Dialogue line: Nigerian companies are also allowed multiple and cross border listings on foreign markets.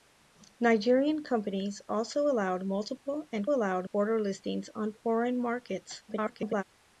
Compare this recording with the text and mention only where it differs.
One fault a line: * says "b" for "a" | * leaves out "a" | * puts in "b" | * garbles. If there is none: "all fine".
* leaves out "are"
* says "allowed" for "cross"
* garbles